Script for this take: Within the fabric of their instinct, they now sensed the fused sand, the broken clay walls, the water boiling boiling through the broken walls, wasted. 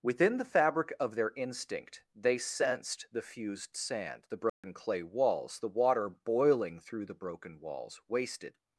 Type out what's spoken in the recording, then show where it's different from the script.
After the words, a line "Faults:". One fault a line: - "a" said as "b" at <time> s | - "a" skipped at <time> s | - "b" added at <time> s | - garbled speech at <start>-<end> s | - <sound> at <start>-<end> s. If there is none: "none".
Within the fabric of their instinct, they sensed the fused sand, the broken clay walls, the water boiling through the broken walls, wasted.
Faults:
- "now" skipped at 2.4 s
- dropout at 4.5-4.6 s
- "boiling" skipped at 6.8 s